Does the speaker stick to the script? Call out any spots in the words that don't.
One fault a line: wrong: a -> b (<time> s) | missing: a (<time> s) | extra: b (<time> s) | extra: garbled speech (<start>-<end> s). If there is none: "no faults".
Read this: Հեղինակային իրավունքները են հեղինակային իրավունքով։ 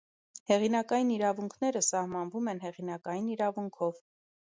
extra: սահմանվում (1.9 s)